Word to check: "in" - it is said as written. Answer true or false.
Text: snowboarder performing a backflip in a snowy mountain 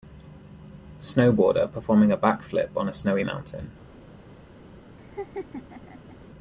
false